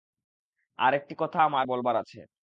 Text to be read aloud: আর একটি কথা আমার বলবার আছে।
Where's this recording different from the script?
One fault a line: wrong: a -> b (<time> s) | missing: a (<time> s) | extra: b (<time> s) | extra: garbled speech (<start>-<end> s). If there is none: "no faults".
no faults